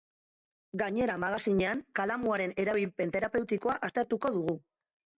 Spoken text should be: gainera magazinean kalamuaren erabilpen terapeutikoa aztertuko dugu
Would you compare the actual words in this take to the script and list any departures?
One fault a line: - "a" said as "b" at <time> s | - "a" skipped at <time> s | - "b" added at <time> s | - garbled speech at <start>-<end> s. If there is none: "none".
none